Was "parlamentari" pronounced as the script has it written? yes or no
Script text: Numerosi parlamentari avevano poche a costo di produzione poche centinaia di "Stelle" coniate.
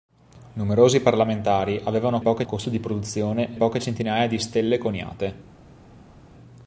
yes